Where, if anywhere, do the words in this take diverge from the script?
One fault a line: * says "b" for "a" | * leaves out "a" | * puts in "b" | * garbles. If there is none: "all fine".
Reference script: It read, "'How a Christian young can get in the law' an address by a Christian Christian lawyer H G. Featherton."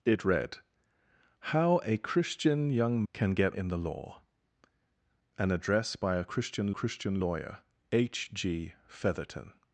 all fine